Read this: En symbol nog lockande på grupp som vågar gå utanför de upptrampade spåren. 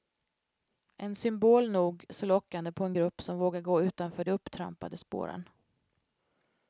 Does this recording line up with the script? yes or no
no